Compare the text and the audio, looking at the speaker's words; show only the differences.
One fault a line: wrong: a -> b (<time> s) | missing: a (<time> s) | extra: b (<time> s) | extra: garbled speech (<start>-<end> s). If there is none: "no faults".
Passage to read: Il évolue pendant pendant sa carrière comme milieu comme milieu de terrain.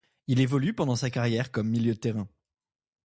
missing: pendant (0.9 s)
missing: comme milieu (1.9 s)